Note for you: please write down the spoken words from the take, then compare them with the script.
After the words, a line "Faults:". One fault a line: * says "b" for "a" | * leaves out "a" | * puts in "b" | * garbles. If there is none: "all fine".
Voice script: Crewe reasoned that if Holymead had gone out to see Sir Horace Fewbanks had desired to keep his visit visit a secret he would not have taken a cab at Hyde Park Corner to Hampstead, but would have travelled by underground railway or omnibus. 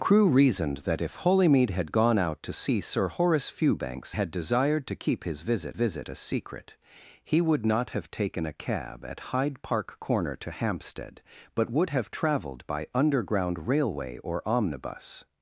Crewe reasoned that if Holymead had gone out to see Sir Horace Fewbanks had desired to keep his visit visit a secret he would not have taken a cab at Hyde Park Corner to Hampstead, but would have travelled by underground railway or omnibus.
Faults:
all fine